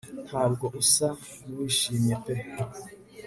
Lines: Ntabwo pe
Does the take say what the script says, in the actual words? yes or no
no